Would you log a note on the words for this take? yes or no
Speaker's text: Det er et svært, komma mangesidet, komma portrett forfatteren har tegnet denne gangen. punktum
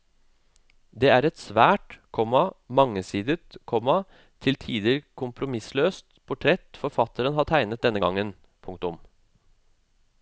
yes